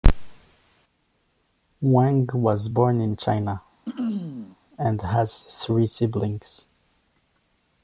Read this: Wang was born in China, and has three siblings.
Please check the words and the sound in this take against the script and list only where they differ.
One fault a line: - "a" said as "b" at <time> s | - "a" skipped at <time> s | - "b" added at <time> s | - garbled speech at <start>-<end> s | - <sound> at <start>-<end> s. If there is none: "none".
- throat clearing at 3.9-4.6 s